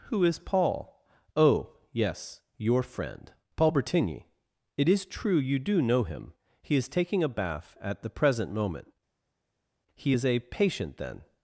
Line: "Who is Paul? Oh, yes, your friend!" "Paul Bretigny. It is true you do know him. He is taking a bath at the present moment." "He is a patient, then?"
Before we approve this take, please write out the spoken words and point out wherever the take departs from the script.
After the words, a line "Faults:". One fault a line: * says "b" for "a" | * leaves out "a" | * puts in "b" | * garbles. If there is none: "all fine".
"Who is Paul? Oh, yes, your friend!" "Paul Bretigny. It is true you do know him. He is taking a bath at the present moment." "He is a patient, then?"
Faults:
all fine